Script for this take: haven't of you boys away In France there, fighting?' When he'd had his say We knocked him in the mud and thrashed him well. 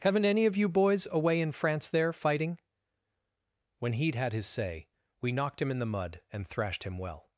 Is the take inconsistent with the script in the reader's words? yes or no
yes